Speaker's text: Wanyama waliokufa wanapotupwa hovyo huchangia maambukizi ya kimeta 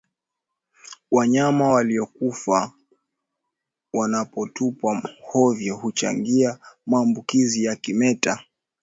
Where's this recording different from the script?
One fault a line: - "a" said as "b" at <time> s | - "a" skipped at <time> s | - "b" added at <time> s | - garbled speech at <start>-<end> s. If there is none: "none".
none